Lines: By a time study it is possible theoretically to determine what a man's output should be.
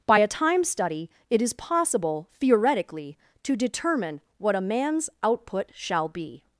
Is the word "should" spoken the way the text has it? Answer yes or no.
no